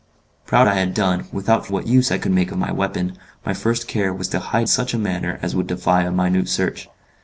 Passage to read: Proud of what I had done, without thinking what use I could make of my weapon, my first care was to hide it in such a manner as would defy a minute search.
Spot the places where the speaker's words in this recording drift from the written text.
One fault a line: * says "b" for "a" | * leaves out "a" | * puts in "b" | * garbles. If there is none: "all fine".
* leaves out "of what"
* leaves out "thinking"
* leaves out "it in"